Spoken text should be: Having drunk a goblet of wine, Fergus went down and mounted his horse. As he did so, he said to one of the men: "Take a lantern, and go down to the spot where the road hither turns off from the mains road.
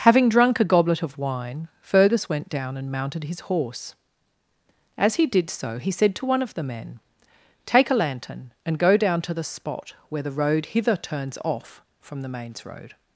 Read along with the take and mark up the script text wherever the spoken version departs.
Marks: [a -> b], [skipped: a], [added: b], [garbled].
Having drunk a goblet of wine, Fergus went down and mounted his horse. As he did so, he said to one of the men: "Take a lantern, and go down to the spot where the road hither turns off from the mains road.